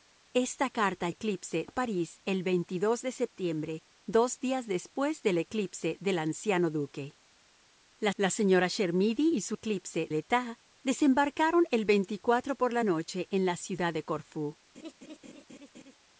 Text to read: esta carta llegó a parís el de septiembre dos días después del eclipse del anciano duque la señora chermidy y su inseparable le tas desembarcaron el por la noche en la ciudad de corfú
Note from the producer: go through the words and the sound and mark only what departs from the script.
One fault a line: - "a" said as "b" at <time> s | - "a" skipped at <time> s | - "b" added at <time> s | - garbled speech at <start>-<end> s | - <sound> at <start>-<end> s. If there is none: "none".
- "llegó" said as "eclipse" at 1.1 s
- "la" added at 8.2 s
- "inseparable" said as "eclipse" at 9.5 s
- laugh at 14.7-16.0 s